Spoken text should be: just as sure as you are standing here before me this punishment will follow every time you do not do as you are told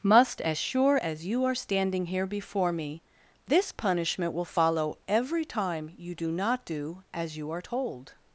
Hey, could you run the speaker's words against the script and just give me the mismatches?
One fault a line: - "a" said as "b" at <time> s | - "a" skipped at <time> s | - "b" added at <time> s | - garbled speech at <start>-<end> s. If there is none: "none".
- "just" said as "must" at 0.0 s